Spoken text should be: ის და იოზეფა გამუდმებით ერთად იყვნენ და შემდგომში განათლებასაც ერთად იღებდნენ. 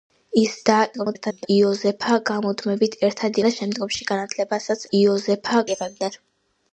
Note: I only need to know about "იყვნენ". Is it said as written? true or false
false